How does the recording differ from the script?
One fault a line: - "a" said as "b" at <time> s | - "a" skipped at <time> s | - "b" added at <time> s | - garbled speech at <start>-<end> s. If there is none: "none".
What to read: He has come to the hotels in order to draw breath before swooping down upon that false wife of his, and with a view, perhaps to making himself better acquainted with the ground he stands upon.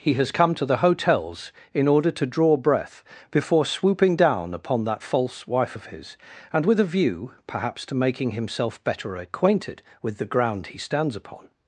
none